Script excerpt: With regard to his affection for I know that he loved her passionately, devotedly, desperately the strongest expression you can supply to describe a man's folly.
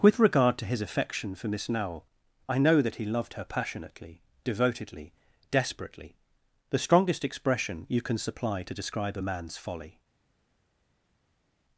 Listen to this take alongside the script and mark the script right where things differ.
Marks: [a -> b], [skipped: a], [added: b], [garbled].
With regard to his affection for [added: Miss Nowell] I know that he loved her passionately, devotedly, desperately the strongest expression you can supply to describe a man's folly.